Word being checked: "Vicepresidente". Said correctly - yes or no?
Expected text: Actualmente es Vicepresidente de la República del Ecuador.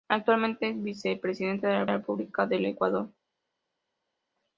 yes